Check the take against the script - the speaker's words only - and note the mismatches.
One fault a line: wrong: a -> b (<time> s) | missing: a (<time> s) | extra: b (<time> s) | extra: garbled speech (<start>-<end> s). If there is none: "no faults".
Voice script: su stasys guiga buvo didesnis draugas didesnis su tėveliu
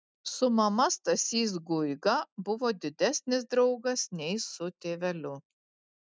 extra: mama (0.6 s)
wrong: didesnis -> nei (4.2 s)